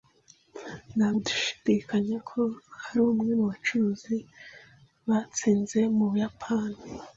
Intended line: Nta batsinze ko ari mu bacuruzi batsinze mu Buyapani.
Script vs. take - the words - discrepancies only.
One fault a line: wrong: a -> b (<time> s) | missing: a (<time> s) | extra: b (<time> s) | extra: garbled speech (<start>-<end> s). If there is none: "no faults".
wrong: batsinze -> gushidikanya (1.1 s)
extra: umwe (3.1 s)